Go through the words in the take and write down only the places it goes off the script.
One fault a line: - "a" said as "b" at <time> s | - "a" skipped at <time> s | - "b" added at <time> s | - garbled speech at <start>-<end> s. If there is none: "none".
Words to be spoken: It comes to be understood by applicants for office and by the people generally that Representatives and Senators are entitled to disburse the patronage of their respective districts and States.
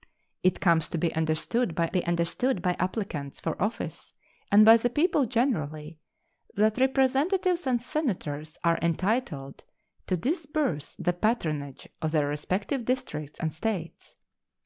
- "be understood by" added at 1.9 s